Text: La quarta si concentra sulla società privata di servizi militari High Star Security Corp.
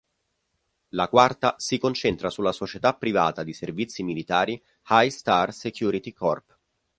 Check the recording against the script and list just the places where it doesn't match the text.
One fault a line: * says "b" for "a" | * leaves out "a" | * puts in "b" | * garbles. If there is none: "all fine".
all fine